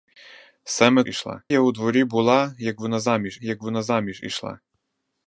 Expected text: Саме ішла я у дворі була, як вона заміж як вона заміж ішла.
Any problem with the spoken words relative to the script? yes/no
no